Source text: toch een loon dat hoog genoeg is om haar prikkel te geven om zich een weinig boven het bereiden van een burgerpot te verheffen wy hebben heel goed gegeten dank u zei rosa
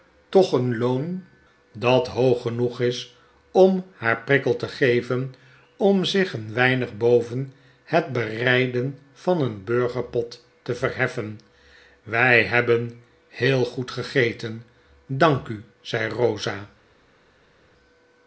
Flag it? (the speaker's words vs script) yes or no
no